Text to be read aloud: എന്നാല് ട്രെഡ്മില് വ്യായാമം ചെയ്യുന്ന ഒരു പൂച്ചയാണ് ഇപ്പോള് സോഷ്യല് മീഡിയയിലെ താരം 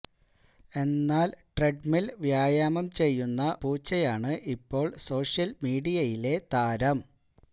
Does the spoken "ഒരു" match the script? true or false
false